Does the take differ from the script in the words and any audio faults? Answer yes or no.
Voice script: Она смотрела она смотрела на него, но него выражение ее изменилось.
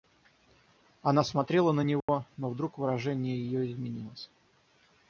yes